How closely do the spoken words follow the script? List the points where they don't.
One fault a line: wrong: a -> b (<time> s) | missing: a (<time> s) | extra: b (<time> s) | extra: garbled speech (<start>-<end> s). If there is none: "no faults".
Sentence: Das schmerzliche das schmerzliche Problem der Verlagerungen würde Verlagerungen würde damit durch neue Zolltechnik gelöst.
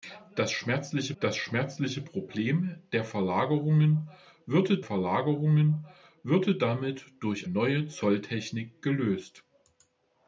no faults